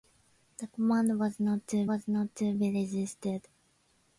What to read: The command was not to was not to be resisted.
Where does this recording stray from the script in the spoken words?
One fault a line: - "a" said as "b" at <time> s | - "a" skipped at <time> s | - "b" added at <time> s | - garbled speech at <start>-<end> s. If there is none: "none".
none